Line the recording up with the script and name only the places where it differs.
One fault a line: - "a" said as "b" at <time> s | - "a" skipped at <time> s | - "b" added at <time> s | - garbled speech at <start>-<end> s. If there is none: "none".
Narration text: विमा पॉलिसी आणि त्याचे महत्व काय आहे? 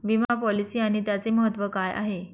none